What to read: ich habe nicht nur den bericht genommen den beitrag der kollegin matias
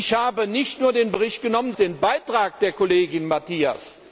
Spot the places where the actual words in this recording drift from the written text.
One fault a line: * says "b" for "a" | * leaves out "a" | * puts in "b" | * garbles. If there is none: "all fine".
all fine